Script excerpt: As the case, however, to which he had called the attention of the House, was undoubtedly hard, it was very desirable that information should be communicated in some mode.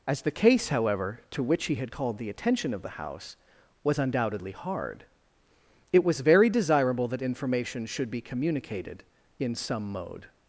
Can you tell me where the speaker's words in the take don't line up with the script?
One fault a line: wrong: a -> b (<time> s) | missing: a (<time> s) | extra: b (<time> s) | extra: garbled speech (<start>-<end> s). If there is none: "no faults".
no faults